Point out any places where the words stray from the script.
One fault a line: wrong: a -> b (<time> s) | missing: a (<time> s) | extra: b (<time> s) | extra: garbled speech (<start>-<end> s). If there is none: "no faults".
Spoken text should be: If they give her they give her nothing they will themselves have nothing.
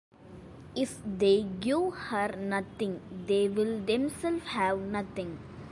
missing: they give her (2.3 s)